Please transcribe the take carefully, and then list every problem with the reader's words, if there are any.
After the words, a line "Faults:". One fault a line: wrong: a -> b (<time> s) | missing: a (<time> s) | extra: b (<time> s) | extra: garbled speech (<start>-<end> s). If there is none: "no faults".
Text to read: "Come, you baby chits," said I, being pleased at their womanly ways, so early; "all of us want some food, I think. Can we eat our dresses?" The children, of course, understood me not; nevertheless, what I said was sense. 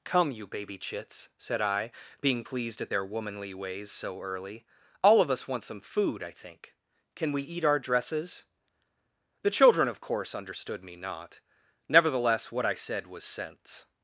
"Come, you baby chits," said I, being pleased at their womanly ways, so early; "all of us want some food, I think. Can we eat our dresses?" The children, of course, understood me not; nevertheless, what I said was sense.
Faults:
no faults